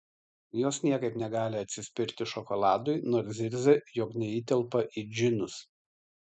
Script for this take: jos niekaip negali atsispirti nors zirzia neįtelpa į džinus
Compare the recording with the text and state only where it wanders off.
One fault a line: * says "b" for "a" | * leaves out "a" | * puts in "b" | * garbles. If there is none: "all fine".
* puts in "šokoladui"
* puts in "jog"